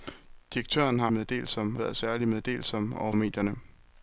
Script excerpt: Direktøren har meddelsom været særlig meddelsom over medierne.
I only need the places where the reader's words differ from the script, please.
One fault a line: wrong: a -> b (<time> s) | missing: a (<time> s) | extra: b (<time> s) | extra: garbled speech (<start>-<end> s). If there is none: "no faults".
no faults